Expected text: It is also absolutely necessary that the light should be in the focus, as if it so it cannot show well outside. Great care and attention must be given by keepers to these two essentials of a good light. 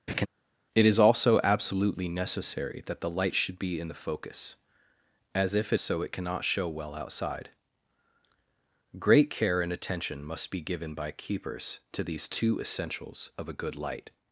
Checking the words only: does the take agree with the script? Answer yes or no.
yes